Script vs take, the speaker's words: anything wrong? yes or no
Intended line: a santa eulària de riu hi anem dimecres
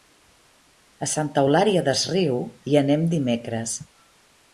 yes